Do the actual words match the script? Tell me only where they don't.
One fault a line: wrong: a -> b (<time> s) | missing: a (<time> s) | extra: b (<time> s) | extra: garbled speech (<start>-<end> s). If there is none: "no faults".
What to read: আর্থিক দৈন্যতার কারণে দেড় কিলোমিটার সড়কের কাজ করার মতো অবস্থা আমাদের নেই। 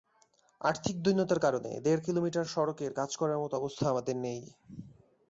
no faults